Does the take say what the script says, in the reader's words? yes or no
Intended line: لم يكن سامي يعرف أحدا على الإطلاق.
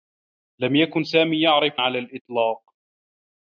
no